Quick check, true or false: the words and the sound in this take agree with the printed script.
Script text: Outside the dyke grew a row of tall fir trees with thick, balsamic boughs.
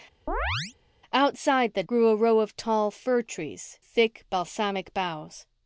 false